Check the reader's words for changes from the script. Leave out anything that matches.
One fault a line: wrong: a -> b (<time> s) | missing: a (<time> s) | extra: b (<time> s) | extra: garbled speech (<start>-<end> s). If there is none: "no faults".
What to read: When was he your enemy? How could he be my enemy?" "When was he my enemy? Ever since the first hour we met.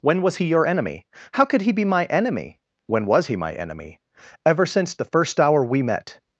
no faults